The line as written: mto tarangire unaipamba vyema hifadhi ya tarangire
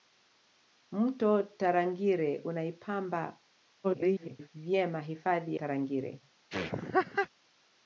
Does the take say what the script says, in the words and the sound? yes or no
no